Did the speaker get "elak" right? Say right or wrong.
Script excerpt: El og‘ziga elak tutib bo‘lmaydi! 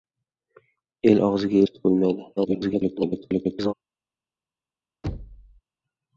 wrong